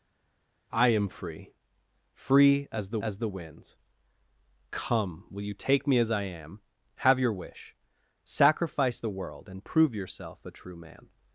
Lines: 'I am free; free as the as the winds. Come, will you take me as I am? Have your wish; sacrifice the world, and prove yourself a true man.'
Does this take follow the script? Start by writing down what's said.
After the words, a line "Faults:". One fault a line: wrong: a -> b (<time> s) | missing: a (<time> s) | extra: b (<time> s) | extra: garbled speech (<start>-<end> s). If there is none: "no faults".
'I am free; free as the as the winds. Come, will you take me as I am? Have your wish; sacrifice the world, and prove yourself a true man.'
Faults:
no faults